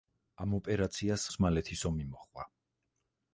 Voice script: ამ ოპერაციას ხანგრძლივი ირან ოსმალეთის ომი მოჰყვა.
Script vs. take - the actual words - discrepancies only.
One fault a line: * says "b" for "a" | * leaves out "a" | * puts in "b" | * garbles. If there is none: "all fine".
* leaves out "ხანგრძლივი ირან"